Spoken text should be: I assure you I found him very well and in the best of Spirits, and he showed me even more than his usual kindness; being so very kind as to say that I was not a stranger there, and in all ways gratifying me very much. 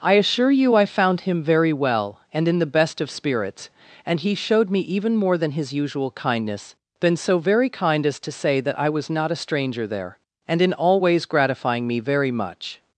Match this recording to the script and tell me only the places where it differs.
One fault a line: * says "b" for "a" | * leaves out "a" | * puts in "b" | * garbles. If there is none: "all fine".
* says "been" for "being"